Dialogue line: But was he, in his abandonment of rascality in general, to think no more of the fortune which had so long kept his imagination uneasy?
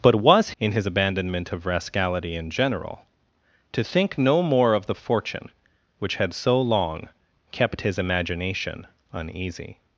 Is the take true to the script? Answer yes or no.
no